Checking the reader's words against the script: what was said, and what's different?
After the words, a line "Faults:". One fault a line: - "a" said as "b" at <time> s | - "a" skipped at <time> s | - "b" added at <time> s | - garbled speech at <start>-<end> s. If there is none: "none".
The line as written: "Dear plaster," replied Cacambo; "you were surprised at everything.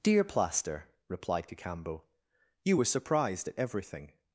"Dear plaster," replied Cacambo; "you were surprised at everything.
Faults:
none